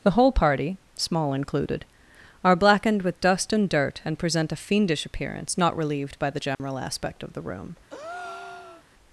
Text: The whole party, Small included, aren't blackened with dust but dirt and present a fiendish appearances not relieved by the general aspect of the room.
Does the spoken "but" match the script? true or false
false